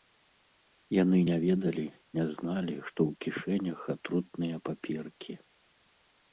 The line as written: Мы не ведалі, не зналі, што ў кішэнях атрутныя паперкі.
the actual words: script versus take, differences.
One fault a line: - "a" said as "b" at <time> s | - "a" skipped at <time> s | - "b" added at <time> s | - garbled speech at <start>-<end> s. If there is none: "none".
- "Мы" said as "Яны" at 1.0 s